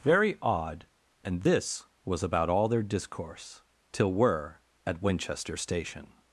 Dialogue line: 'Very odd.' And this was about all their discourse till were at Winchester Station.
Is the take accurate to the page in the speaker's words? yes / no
yes